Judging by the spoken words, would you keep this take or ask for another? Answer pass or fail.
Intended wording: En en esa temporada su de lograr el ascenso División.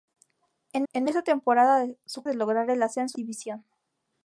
pass